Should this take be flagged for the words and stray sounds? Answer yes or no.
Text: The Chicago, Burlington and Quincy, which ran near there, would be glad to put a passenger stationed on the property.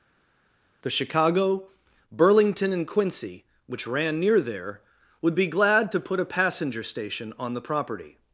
yes